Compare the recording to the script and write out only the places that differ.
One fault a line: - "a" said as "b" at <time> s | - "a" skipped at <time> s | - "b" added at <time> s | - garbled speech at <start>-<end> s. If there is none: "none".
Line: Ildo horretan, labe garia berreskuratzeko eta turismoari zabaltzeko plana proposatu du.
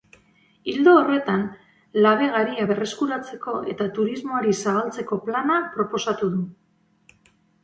none